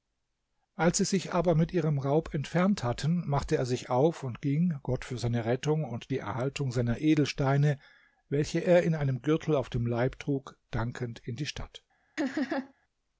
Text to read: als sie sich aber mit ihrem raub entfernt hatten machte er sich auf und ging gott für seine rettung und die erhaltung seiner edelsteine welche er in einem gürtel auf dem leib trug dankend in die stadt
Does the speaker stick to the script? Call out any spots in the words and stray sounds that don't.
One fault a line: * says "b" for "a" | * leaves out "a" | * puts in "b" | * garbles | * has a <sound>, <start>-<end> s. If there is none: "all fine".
* has a laugh, 12.2-12.7 s